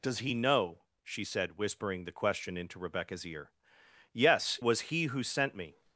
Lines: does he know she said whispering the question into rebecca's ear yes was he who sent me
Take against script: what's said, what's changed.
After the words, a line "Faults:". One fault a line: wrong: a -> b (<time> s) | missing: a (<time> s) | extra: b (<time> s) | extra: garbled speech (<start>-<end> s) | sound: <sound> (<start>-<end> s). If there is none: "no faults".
does he know she said whispering the question into rebecca's ear yes was he who sent me
Faults:
no faults